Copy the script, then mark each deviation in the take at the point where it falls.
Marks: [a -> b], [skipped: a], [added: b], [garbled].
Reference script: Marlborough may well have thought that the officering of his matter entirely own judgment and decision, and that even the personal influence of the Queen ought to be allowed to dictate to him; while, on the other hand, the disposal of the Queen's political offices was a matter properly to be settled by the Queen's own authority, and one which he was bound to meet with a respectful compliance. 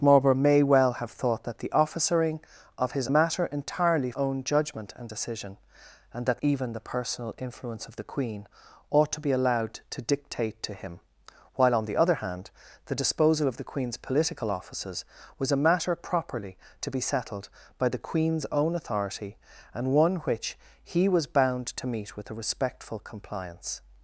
Marlborough may well have thought that the officering of his matter entirely own judgment and decision, and that even the personal influence of the Queen ought to be allowed to dictate to him; while, on the other hand, the disposal of the Queen's political offices was a matter properly to be settled by the Queen's own authority, and one which he was bound to meet with a respectful compliance.